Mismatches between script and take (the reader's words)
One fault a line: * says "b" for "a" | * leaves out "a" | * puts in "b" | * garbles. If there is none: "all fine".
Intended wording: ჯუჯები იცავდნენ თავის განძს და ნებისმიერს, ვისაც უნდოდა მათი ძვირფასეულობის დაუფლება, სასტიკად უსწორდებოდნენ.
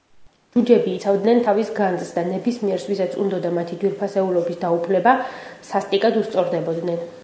all fine